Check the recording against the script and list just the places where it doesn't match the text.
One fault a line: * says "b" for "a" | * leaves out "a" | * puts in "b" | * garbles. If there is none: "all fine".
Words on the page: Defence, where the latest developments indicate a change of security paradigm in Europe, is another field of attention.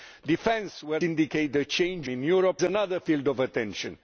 * leaves out "the latest developments"
* leaves out "of security paradigm"
* leaves out "is"